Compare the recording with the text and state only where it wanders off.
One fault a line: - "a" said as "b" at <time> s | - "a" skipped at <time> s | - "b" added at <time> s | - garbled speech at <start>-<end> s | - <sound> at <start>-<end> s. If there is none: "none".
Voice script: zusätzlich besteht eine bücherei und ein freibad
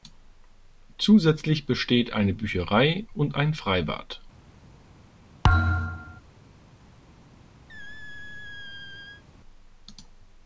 - thud at 5.4-6.2 s
- squeak at 7.7-9.2 s